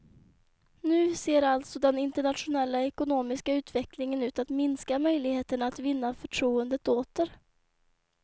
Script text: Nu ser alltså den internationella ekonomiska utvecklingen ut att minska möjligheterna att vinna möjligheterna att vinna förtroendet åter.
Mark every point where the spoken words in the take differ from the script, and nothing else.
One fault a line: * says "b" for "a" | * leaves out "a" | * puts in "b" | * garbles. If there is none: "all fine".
* leaves out "möjligheterna att vinna"